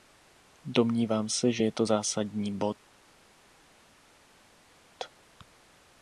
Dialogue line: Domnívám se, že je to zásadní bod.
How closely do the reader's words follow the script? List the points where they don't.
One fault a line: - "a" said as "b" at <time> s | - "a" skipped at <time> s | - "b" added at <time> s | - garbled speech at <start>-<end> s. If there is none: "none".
none